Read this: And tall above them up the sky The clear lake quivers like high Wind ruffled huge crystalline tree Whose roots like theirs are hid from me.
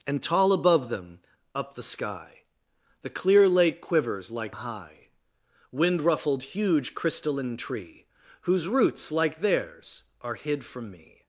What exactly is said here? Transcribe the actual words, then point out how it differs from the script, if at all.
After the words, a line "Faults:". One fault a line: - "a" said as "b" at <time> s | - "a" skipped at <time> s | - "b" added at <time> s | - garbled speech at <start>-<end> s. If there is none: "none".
And tall above them up the sky The clear lake quivers like high Wind ruffled huge crystalline tree Whose roots like theirs are hid from me.
Faults:
none